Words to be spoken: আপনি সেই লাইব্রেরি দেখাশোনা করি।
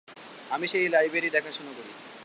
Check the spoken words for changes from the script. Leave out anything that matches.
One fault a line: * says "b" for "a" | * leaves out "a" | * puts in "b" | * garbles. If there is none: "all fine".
* says "আমি" for "আপনি"